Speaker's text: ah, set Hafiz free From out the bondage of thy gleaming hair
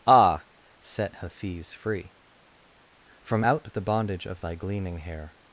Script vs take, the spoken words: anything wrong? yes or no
no